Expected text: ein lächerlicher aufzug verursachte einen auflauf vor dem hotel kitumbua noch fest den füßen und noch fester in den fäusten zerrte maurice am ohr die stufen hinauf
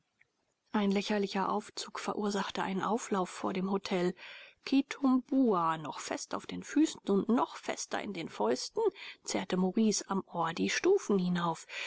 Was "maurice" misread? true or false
false